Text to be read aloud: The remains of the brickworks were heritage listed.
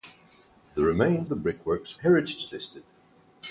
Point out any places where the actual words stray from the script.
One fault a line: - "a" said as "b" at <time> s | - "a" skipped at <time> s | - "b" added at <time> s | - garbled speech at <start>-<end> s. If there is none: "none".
- "of" skipped at 1.3 s
- "were" skipped at 2.0 s